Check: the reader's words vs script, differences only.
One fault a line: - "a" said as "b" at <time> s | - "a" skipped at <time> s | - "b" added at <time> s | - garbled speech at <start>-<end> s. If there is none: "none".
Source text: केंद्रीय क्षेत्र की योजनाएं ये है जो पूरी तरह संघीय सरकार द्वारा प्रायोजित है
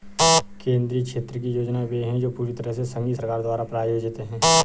- "ये" said as "वे" at 1.9 s
- "से" added at 2.7 s